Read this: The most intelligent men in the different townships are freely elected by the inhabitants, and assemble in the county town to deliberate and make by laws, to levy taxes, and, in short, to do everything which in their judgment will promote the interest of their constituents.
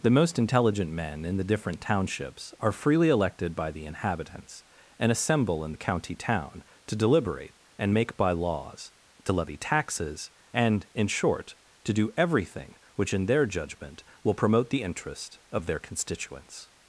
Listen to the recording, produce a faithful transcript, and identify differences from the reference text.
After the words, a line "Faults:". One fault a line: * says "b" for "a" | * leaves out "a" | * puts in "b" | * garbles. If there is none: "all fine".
The most intelligent men in the different townships are freely elected by the inhabitants, and assemble in the county town to deliberate and make by laws, to levy taxes, and, in short, to do everything which in their judgment will promote the interest of their constituents.
Faults:
all fine